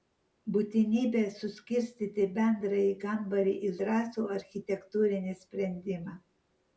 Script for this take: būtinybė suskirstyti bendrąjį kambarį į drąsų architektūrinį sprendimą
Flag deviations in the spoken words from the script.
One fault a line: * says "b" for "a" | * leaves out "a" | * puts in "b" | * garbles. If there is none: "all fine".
all fine